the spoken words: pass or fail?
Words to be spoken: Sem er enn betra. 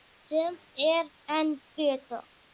pass